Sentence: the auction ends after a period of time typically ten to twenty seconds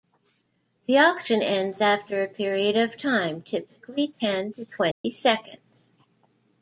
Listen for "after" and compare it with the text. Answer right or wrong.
right